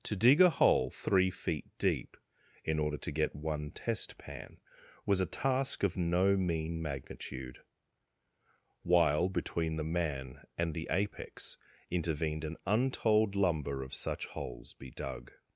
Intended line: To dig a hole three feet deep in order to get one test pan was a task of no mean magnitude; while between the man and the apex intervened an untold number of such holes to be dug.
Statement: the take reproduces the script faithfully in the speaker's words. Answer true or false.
false